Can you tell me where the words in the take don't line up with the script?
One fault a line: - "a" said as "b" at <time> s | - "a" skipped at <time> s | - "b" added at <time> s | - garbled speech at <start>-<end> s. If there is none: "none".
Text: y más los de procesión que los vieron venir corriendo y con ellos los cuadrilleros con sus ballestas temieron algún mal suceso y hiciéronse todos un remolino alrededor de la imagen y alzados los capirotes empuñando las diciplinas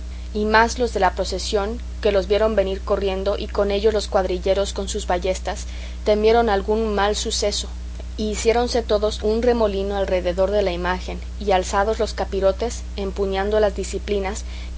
- "la" added at 1.0 s